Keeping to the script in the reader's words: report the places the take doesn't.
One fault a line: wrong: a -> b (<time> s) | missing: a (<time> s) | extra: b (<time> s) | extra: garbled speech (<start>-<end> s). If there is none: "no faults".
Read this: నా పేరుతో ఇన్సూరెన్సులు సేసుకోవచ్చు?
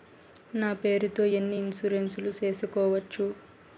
extra: ఎన్ని (1.3 s)